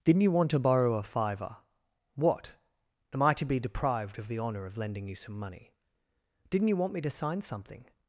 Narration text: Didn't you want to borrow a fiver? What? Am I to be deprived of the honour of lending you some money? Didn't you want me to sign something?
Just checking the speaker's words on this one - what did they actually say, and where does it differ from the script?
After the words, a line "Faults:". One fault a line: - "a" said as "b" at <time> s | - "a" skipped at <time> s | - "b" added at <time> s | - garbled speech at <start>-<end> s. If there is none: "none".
Didn't you want to borrow a fiver? What? Am I to be deprived of the honour of lending you some money? Didn't you want me to sign something?
Faults:
none